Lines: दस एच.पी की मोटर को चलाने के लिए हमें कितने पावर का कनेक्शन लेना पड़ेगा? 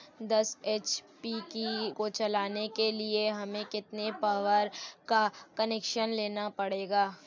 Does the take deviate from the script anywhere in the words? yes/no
yes